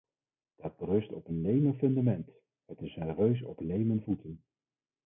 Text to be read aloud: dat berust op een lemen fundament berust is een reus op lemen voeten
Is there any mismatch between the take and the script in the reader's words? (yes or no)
yes